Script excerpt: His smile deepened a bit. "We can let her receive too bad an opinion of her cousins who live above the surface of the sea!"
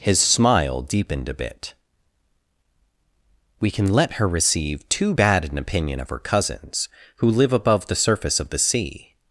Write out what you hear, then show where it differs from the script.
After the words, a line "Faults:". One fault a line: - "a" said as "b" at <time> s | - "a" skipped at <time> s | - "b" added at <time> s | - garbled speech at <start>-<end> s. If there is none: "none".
His smile deepened a bit. "We can let her receive too bad an opinion of her cousins who live above the surface of the sea!"
Faults:
none